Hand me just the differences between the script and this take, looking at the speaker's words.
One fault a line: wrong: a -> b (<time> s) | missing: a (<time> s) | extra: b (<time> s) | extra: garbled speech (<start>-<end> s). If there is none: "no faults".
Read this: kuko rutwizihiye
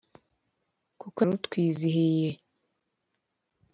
no faults